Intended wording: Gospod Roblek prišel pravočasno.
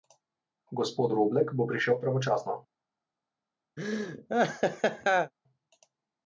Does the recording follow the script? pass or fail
fail